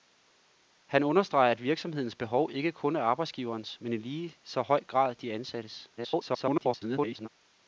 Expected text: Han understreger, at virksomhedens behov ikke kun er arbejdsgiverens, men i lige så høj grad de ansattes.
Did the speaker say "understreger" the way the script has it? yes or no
yes